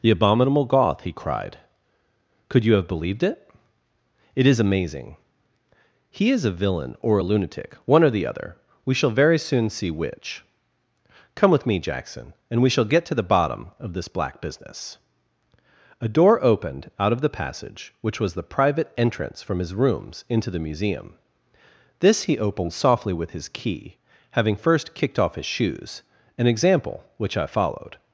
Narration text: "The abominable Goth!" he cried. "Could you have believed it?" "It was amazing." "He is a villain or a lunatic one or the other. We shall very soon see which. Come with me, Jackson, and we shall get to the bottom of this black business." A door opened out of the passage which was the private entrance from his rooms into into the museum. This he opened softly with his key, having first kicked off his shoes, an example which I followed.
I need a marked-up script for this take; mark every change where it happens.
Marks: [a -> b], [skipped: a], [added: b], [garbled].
"The abominable Goth!" he cried. "Could you have believed it?" "It [was -> is] amazing." "He is a villain or a lunatic one or the other. We shall very soon see which. Come with me, Jackson, and we shall get to the bottom of this black business." A door opened out of the passage which was the private entrance from his rooms into [skipped: into] the museum. This he opened softly with his key, having first kicked off his shoes, an example which I followed.